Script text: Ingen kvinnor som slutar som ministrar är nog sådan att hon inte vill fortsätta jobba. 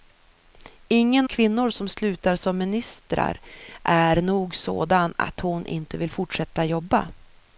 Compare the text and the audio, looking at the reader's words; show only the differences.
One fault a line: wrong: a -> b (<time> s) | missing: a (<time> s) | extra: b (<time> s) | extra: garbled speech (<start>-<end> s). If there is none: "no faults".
no faults